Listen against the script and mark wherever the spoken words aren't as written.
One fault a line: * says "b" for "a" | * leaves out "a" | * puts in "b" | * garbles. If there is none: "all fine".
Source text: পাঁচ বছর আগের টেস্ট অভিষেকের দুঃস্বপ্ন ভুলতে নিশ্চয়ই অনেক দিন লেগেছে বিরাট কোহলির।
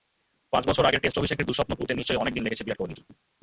all fine